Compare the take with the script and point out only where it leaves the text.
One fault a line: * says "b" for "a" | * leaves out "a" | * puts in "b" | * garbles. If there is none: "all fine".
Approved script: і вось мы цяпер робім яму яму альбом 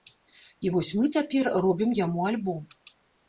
* leaves out "яму"